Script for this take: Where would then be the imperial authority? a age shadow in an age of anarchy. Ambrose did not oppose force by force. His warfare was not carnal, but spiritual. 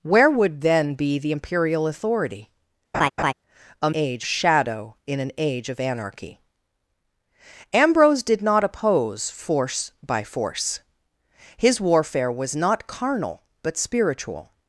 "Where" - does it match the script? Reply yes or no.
yes